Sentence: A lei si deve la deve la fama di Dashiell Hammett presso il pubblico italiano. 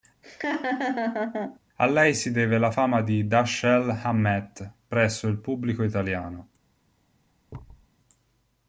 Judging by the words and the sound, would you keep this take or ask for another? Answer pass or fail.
fail